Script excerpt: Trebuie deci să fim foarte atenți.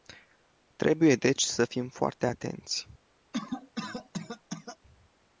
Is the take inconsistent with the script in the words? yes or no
no